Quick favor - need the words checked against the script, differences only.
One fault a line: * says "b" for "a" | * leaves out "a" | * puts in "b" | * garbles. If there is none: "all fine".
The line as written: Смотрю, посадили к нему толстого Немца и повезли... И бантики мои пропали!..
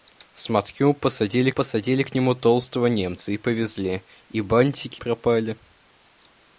* puts in "посадили"
* leaves out "мои"